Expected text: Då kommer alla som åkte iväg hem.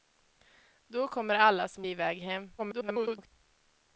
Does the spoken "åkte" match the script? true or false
false